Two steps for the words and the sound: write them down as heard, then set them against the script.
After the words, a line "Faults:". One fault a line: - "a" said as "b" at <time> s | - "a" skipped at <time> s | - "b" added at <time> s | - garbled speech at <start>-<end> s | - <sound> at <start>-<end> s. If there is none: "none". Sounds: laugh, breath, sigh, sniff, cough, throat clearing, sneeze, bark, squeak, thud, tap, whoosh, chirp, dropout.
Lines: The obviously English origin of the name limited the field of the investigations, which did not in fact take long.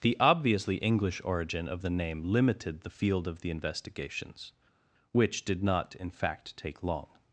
The obviously English origin of the name limited the field of the investigations, which did not in fact take long.
Faults:
none